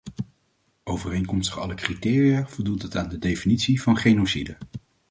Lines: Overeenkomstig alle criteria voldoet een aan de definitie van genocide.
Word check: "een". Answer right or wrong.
wrong